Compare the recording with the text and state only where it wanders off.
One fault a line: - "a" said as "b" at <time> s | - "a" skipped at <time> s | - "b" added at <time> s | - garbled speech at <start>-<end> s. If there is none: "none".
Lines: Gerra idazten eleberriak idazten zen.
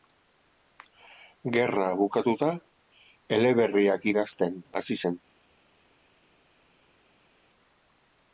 - "idazten" said as "bukatuta" at 2.0 s
- "hasi" added at 4.8 s